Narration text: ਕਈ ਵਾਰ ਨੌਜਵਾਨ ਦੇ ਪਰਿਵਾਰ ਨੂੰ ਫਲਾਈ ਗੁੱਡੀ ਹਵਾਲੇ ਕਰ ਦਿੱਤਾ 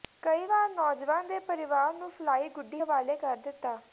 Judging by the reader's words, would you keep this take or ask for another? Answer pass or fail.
pass